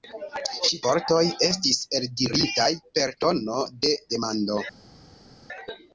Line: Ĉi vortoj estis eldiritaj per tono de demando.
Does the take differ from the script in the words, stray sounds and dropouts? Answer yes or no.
no